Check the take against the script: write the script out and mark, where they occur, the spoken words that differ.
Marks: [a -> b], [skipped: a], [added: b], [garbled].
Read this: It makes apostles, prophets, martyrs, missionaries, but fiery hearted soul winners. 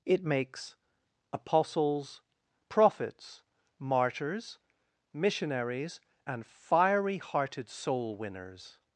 It makes apostles, prophets, martyrs, missionaries, [but -> and] fiery hearted soul winners.